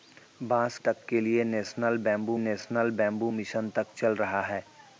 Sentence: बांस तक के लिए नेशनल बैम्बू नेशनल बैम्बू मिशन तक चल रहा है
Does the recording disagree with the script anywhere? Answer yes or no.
no